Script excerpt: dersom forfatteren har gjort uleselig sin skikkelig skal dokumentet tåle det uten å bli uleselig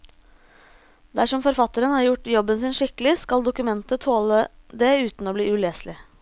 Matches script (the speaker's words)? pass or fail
fail